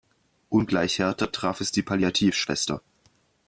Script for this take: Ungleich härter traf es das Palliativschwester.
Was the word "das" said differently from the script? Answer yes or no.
yes